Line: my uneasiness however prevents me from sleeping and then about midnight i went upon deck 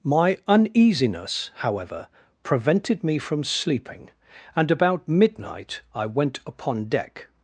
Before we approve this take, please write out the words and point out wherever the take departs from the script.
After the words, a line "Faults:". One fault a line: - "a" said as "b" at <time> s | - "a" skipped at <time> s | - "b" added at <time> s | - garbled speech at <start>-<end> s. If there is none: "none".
my uneasiness however prevented me from sleeping and about midnight i went upon deck
Faults:
- "prevents" said as "prevented" at 2.4 s
- "then" skipped at 4.7 s